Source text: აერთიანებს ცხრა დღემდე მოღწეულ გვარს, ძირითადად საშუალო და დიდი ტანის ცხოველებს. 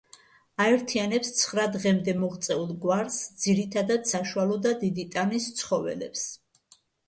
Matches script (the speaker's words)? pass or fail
pass